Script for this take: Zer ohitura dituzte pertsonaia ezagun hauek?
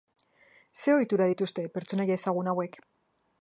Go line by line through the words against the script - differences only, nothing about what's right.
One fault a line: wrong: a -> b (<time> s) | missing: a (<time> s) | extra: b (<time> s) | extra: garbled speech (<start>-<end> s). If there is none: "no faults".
no faults